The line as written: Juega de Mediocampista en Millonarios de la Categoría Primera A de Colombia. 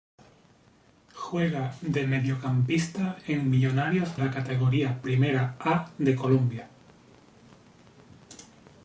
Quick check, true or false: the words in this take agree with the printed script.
false